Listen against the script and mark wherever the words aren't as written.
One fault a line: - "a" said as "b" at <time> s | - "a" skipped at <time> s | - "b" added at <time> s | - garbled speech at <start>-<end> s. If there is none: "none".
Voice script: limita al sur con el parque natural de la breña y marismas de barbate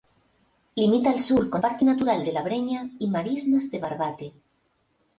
- "el" skipped at 1.6 s